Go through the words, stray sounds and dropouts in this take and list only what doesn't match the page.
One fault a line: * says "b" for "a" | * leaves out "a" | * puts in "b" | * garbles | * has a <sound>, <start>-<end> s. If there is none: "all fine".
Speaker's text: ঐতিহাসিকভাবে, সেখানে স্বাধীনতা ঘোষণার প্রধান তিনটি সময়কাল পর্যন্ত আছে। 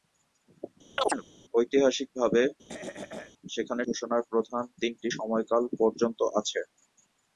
* has a chirp, 1.0-1.2 s
* has a throat clearing, 2.7-3.3 s
* leaves out "স্বাধীনতা"